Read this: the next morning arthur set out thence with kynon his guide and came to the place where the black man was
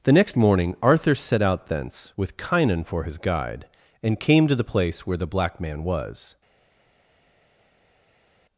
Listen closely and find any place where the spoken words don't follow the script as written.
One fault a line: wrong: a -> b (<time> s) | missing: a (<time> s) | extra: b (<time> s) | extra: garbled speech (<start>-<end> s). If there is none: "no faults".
extra: for (2.8 s)